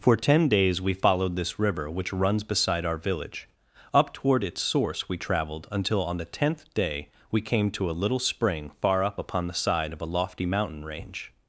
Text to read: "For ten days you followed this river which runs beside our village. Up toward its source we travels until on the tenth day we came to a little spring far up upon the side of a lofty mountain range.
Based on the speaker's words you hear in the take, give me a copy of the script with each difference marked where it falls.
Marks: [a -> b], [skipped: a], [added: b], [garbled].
"For ten days [you -> we] followed this river which runs beside our village. Up toward its source we [travels -> traveled] until on the tenth day we came to a little spring far up upon the side of a lofty mountain range.